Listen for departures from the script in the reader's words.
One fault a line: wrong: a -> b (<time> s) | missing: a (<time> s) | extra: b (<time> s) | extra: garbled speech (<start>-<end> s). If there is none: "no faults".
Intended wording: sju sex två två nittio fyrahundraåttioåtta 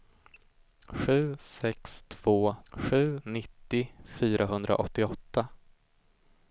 wrong: två -> sju (2.7 s)